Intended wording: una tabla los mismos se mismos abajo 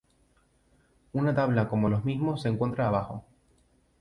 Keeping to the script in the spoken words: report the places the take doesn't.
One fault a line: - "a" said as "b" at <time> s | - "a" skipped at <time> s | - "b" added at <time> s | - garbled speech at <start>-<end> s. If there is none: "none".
- "como" added at 1.7 s
- "mismos" said as "encuentra" at 2.5 s